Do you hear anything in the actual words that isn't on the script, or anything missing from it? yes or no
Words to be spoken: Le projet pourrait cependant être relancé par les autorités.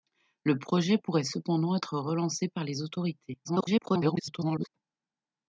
yes